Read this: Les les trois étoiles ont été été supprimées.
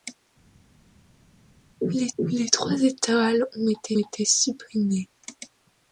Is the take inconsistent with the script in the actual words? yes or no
no